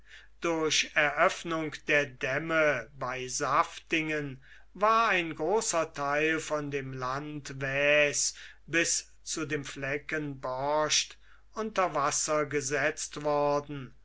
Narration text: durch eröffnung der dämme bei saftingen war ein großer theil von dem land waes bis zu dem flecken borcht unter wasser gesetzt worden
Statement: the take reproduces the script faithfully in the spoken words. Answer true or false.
true